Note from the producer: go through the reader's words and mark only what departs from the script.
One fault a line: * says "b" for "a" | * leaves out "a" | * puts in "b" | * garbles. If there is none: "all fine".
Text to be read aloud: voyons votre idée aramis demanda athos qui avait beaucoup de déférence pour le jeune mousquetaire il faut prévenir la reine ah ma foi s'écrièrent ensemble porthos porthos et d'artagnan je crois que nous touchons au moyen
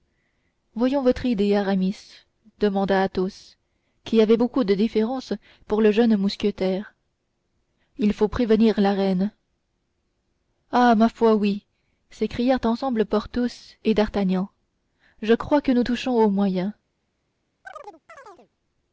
* puts in "oui"
* leaves out "porthos"